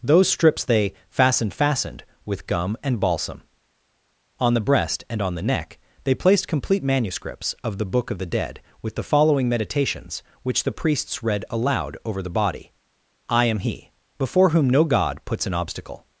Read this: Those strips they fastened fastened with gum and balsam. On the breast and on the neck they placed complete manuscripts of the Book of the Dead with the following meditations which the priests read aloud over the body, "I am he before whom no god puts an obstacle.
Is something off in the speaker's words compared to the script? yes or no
no